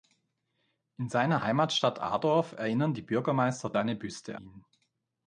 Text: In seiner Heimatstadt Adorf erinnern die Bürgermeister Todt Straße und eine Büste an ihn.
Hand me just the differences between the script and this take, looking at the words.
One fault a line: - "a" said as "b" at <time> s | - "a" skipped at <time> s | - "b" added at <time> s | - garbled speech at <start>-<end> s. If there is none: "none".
- "Todt Straße und" skipped at 3.7 s
- "an" skipped at 4.4 s